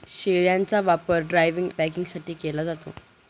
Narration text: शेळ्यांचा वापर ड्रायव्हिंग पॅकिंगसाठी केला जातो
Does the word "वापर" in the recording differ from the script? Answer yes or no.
no